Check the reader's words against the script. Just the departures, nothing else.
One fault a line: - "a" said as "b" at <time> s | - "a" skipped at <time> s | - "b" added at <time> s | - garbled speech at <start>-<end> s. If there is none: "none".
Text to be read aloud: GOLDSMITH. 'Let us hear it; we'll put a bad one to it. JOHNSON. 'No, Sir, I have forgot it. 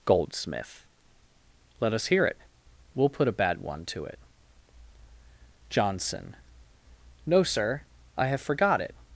none